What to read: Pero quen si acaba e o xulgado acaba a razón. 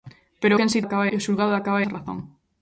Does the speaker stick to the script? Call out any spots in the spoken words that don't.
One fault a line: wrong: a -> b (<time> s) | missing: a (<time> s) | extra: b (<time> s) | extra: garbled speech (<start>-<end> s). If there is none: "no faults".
no faults